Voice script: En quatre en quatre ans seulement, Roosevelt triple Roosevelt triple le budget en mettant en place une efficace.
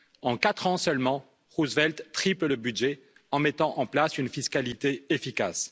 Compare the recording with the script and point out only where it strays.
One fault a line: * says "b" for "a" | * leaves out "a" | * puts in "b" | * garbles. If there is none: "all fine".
* leaves out "en quatre"
* leaves out "Roosevelt triple"
* puts in "fiscalité"